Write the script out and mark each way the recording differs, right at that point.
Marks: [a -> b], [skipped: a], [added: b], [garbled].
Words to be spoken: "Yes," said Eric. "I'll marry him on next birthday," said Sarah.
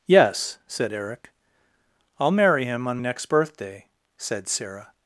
"Yes," said Eric. "I'll marry him on next birthday," said Sarah.